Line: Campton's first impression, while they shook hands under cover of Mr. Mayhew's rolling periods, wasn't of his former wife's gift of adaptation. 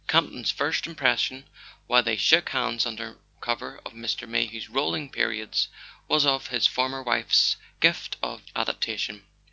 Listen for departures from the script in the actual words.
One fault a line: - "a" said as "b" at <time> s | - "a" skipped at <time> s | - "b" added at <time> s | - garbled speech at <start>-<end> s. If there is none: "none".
- "wasn't" said as "was" at 6.1 s